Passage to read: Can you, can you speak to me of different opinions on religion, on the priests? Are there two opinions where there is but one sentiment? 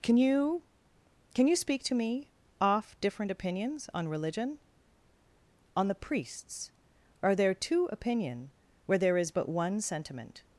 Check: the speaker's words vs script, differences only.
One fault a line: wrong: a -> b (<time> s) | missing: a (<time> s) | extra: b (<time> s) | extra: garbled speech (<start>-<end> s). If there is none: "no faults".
wrong: of -> off (2.6 s)
wrong: opinions -> opinion (7.9 s)